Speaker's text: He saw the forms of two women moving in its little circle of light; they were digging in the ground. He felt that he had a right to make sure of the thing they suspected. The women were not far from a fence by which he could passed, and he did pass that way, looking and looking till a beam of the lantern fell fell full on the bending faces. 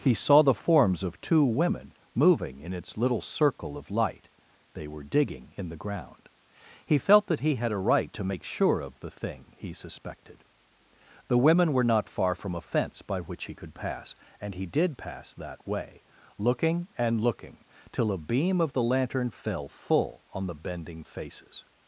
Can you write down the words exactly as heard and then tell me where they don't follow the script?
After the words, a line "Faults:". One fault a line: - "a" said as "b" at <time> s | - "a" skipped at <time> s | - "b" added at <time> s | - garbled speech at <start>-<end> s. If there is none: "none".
He saw the forms of two women moving in its little circle of light; they were digging in the ground. He felt that he had a right to make sure of the thing he suspected. The women were not far from a fence by which he could pass, and he did pass that way, looking and looking till a beam of the lantern fell full on the bending faces.
Faults:
- "they" said as "he" at 9.6 s
- "passed" said as "pass" at 13.7 s
- "fell" skipped at 19.7 s